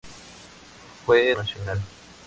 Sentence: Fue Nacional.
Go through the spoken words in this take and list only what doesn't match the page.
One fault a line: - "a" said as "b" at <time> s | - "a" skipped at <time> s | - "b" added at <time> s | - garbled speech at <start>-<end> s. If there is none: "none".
none